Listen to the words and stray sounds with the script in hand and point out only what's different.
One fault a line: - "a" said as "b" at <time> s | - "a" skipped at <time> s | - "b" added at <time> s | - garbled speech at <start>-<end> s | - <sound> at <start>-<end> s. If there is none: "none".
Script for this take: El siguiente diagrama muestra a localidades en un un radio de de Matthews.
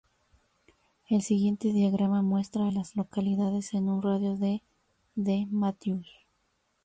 - "las" added at 2.7 s
- "un" skipped at 4.0 s